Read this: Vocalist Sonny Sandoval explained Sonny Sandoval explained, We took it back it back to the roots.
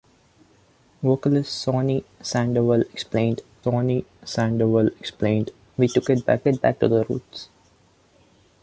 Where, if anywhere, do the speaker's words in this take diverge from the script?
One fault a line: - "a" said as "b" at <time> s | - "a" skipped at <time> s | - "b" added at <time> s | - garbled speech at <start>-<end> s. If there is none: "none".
none